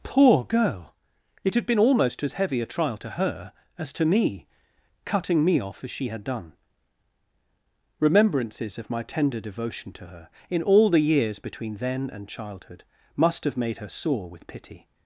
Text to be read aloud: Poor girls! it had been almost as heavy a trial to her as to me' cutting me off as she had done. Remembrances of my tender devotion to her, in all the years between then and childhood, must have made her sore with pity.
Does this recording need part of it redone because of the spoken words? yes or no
yes